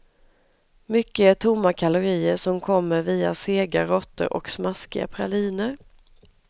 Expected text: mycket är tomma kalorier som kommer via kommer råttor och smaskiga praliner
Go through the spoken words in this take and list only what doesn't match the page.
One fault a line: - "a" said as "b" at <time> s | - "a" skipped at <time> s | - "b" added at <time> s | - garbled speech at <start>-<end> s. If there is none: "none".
- "kommer" said as "sega" at 3.4 s